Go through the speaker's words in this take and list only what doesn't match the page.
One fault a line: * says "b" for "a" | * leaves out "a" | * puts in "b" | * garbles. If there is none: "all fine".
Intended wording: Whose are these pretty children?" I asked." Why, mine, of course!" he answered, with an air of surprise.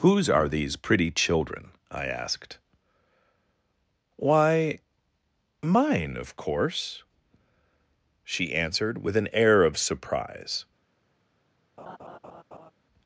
* says "she" for "he"